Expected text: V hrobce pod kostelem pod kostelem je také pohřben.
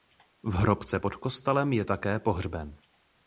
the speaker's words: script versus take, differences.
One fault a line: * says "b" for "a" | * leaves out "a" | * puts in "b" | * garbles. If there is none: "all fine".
* leaves out "pod kostelem"